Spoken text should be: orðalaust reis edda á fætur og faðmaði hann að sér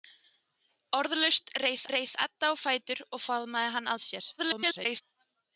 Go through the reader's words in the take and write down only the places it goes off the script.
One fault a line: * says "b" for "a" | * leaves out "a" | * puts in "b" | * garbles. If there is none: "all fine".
* puts in "reis"
* garbles